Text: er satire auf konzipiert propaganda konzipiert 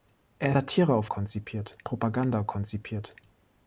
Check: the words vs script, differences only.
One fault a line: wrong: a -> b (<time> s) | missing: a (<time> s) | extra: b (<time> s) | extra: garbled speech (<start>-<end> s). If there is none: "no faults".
no faults